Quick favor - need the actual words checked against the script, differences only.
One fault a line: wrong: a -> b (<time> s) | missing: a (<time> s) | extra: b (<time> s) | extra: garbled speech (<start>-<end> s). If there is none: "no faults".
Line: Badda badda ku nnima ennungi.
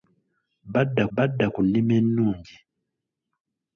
no faults